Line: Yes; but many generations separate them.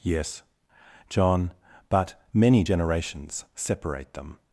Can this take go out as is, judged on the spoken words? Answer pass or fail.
fail